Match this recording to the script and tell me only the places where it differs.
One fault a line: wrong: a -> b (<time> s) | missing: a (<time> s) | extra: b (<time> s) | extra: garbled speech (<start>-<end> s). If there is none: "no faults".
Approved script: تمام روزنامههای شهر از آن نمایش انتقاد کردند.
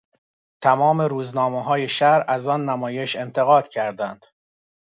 no faults